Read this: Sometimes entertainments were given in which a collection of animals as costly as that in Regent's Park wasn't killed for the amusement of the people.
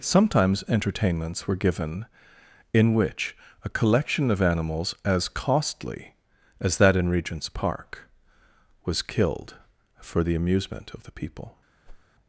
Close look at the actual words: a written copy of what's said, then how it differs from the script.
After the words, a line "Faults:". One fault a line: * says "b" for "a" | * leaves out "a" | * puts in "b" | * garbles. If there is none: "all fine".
Sometimes entertainments were given in which a collection of animals as costly as that in Regent's Park was killed for the amusement of the people.
Faults:
* says "was" for "wasn't"